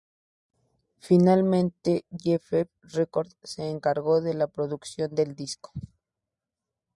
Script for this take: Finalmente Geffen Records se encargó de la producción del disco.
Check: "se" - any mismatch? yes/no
no